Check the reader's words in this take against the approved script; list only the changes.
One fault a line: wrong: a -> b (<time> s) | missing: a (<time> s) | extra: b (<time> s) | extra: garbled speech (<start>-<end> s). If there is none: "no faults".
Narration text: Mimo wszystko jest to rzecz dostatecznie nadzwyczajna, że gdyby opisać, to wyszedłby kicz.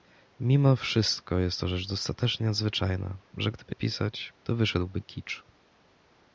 no faults